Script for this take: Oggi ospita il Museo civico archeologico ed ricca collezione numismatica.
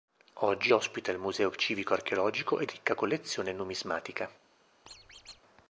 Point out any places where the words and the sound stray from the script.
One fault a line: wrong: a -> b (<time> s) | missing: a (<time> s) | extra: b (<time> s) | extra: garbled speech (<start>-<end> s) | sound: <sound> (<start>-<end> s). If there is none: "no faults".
sound: squeak (4.9-5.4 s)